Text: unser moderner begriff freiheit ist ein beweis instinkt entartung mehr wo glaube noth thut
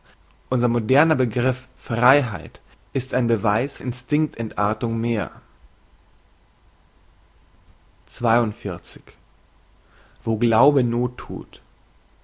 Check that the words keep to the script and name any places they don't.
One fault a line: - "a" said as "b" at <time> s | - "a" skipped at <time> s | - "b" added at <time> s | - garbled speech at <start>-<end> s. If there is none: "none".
none